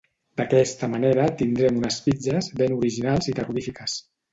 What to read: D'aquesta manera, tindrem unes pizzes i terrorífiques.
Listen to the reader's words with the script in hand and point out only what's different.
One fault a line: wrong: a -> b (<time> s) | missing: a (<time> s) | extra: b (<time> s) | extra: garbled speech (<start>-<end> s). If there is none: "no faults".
extra: ben originals (2.6 s)